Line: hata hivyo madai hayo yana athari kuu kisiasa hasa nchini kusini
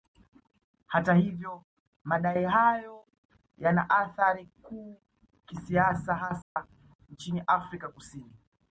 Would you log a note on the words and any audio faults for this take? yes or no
yes